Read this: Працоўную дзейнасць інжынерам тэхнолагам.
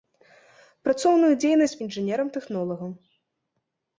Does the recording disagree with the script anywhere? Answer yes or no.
no